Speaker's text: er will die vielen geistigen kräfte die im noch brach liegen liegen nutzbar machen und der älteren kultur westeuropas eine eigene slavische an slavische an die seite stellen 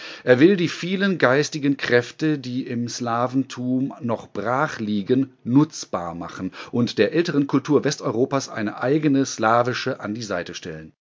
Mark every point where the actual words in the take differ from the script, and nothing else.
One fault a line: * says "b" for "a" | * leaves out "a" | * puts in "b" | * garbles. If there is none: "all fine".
* puts in "slaventum"
* leaves out "liegen"
* leaves out "slavische an"